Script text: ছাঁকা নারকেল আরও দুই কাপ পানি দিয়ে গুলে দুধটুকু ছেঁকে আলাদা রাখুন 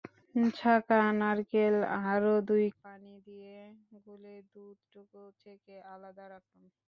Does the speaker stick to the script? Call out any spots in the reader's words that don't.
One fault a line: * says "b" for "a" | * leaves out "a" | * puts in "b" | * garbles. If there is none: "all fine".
* leaves out "কাপ"